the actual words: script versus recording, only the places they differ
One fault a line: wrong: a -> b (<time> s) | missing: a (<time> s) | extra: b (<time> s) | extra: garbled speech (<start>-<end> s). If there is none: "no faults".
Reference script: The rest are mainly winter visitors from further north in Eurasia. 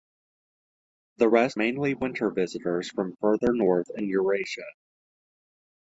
missing: are (1.6 s)